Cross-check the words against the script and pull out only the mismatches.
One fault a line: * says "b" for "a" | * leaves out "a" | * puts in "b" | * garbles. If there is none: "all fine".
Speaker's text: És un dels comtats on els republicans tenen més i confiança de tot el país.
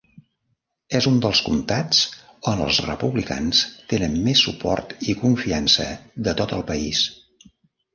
* puts in "suport"